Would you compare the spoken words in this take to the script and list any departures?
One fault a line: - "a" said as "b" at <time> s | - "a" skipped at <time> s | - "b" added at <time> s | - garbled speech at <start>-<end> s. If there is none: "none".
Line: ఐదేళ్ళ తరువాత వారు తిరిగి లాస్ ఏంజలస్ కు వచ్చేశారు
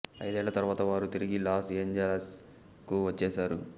none